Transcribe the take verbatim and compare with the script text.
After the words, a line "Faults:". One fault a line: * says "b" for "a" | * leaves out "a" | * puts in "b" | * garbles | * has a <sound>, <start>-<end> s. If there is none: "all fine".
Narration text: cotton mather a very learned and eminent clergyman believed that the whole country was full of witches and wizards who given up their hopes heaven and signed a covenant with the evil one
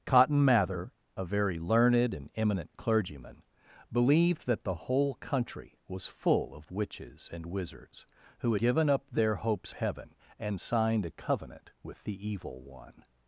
cotton mather a very learned and eminent clergyman believed that the whole country was full of witches and wizards who given up their hopes heaven and signed a covenant with the evil one
Faults:
all fine